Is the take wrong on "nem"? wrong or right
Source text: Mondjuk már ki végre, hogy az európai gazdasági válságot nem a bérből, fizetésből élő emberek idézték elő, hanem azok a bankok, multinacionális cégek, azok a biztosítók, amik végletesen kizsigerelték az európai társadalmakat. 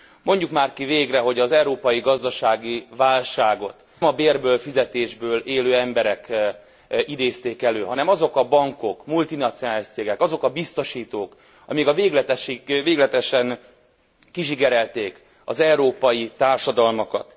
wrong